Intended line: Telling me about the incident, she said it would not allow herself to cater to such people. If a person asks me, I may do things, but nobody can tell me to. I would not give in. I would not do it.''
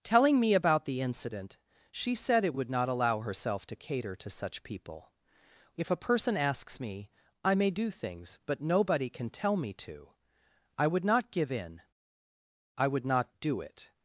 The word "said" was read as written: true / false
true